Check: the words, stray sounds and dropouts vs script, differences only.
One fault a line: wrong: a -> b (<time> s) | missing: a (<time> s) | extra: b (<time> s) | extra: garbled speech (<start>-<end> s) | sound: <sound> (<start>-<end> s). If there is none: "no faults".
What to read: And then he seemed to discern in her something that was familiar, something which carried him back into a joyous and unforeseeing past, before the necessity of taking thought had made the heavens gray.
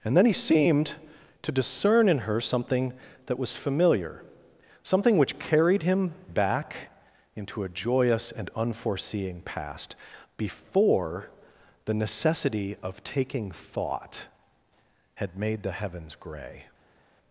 no faults